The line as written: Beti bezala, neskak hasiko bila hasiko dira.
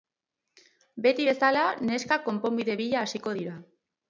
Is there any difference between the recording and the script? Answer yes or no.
yes